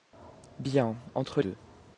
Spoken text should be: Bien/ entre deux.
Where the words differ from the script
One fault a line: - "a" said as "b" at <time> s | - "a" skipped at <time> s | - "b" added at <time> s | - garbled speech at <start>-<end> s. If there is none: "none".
none